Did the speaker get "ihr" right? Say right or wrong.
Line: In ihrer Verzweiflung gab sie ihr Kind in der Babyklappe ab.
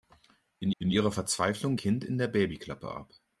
wrong